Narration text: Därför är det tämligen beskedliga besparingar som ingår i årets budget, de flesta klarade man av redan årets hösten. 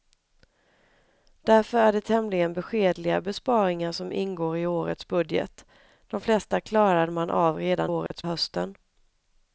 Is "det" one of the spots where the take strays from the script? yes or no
no